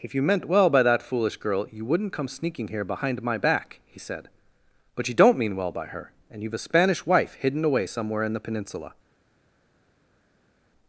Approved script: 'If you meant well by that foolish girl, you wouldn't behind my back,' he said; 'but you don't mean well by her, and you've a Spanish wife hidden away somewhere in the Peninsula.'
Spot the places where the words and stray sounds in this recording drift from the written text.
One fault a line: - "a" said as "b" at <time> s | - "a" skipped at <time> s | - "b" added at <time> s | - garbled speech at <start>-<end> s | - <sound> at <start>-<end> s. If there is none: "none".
- "come sneaking here" added at 2.1 s